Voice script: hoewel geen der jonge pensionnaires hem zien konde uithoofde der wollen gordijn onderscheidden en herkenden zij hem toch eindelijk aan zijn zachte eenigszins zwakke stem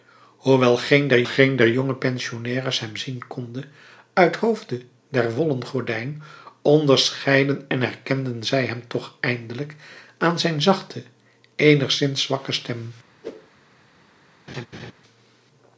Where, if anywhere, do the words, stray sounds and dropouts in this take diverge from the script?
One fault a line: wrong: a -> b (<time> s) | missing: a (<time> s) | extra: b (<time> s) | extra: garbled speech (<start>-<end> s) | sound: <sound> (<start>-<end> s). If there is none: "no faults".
extra: geen der (1.2 s)
sound: whoosh (13.2-13.5 s)
sound: laugh (14.5-14.9 s)